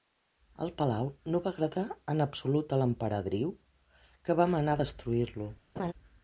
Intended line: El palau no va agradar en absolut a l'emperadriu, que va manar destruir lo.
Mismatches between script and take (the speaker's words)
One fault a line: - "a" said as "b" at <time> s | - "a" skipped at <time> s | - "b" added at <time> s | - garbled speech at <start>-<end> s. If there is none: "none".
none